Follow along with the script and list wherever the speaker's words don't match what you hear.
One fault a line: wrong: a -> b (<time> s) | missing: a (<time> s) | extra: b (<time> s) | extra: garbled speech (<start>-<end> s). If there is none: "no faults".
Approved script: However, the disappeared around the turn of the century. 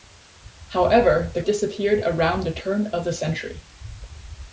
no faults